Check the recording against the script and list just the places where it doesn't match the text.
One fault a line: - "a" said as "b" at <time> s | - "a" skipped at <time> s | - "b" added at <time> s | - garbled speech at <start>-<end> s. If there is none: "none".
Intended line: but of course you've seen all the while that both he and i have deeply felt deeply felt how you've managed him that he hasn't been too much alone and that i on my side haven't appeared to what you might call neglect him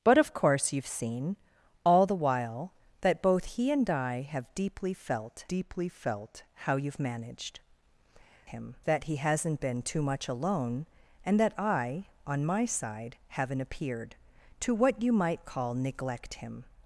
none